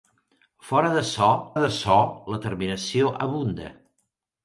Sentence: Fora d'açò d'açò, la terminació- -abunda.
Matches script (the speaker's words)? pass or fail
pass